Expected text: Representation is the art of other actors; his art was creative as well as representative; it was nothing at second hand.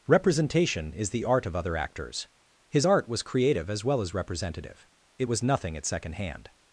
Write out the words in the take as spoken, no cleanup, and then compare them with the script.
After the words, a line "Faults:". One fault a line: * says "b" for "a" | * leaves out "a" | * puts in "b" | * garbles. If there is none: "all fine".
Representation is the art of other actors; his art was creative as well as representative; it was nothing at second hand.
Faults:
all fine